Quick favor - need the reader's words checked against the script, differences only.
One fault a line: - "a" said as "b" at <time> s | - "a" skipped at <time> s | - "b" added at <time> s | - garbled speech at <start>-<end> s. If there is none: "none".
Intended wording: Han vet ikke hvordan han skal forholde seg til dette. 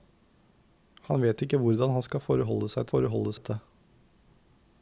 - "til" said as "forholde" at 2.9 s